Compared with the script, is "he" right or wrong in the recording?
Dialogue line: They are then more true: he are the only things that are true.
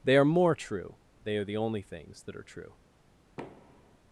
wrong